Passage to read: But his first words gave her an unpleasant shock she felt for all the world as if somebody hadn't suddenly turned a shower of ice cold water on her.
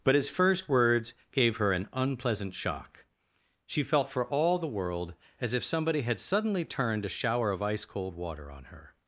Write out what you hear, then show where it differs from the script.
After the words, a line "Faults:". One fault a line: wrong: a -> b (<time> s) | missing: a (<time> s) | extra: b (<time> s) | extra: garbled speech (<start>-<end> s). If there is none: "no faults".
But his first words gave her an unpleasant shock she felt for all the world as if somebody had suddenly turned a shower of ice cold water on her.
Faults:
wrong: hadn't -> had (6.0 s)